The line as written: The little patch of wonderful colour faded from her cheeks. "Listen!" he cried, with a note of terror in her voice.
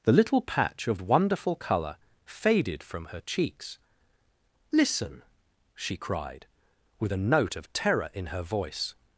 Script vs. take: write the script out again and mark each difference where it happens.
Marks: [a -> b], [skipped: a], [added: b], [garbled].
The little patch of wonderful colour faded from her cheeks. "Listen!" [he -> she] cried, with a note of terror in her voice.